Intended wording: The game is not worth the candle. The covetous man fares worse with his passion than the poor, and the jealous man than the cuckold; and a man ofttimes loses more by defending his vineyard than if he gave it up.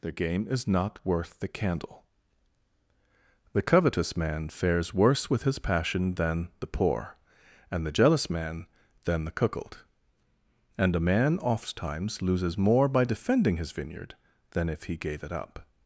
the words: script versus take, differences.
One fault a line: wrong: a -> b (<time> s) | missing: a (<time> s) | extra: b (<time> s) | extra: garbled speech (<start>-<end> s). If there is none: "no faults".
no faults